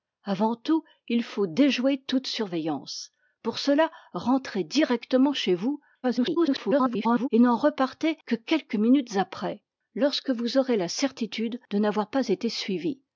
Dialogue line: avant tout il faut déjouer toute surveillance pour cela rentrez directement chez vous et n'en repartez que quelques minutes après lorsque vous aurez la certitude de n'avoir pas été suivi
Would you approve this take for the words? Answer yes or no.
no